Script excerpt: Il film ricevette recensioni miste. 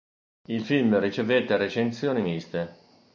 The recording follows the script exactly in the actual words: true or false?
true